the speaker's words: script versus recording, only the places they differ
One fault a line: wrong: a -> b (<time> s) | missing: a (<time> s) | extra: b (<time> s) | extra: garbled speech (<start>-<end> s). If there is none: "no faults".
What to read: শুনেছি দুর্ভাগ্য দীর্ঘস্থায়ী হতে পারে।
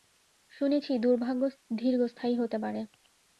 no faults